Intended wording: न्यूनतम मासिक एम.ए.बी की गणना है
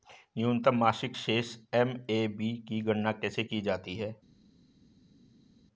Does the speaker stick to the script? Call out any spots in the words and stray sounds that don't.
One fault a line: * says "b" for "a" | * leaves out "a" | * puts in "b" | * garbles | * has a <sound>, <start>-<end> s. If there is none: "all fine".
* puts in "शेष"
* puts in "कैसे की जाती"